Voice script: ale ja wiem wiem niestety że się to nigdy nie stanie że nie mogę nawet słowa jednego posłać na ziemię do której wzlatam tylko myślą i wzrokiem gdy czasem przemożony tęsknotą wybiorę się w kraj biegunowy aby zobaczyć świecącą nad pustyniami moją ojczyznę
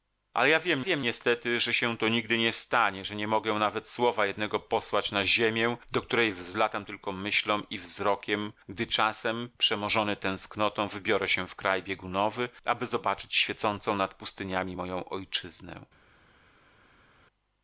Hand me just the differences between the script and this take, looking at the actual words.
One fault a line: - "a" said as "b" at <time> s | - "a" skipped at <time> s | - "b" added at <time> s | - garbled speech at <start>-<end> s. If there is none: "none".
none